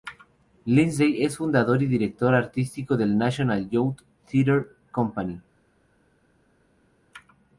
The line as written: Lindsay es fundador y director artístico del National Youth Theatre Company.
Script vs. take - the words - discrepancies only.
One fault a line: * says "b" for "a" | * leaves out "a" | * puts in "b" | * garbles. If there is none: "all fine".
all fine